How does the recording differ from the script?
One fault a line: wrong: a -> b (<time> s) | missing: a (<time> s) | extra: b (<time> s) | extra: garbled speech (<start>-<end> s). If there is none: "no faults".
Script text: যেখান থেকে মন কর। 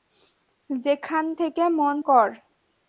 no faults